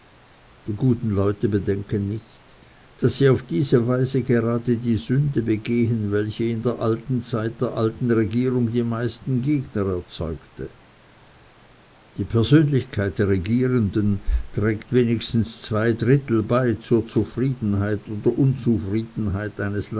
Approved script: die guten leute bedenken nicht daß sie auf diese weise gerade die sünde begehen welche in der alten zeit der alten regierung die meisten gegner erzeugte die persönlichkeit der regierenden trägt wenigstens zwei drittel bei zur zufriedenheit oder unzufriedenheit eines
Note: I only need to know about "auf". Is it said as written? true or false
true